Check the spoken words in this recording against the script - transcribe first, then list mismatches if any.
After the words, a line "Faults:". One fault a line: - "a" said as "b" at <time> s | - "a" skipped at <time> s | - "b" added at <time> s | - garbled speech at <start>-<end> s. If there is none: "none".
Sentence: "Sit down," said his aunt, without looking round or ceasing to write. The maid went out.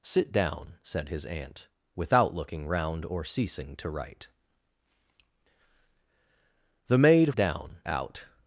"Sit down," said his aunt, without looking round or ceasing to write. The maid down out.
Faults:
- "went" said as "down" at 7.3 s